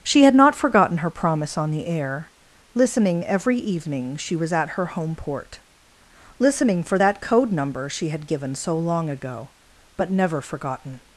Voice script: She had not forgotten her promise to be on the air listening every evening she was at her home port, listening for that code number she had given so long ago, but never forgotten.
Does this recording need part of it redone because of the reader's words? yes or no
yes